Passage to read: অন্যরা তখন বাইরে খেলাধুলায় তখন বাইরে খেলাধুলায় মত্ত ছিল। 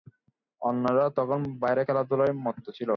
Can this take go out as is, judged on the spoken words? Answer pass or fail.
fail